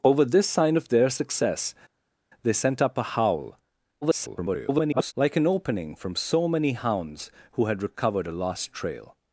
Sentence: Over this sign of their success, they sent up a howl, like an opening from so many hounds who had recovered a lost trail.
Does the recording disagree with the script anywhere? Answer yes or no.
yes